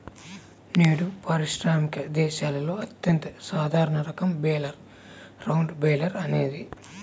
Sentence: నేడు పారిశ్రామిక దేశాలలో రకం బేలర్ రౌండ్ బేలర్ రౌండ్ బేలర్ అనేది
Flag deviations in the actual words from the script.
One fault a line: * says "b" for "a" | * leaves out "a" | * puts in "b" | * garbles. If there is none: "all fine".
* says "అత్యంత సాధారణ రకం" for "రకం బేలర్ రౌండ్"